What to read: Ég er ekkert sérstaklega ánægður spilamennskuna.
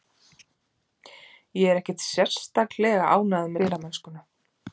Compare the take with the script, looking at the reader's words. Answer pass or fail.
pass